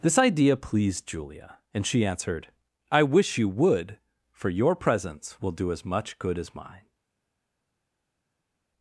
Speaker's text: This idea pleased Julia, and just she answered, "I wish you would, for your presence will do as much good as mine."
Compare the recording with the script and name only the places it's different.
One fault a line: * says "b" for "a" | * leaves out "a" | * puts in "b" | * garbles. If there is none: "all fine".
* leaves out "just"